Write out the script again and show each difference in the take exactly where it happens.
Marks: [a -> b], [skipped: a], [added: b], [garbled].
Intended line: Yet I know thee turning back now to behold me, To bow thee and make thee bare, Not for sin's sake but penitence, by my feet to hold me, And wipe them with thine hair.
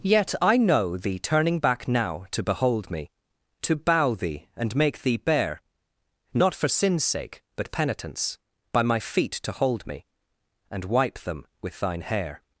Yet I know thee turning back now to behold me, To bow thee and make thee bare, Not for sin's sake but penitence, by my feet to hold me, And wipe them with thine hair.